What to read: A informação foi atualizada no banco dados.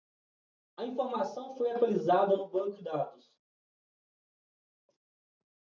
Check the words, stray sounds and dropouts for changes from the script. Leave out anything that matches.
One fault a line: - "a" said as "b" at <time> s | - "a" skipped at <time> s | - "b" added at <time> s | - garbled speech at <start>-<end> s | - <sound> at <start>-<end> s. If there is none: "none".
none